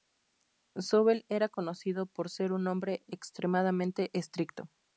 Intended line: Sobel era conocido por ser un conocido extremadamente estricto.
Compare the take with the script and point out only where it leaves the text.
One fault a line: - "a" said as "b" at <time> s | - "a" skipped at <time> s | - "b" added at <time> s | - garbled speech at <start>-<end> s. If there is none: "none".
- "conocido" said as "hombre" at 2.7 s